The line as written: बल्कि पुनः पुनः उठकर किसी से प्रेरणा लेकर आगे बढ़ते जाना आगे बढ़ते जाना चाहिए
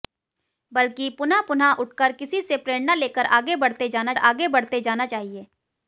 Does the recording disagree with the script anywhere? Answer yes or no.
no